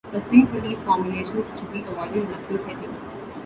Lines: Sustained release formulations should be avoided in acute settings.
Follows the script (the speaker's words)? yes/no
yes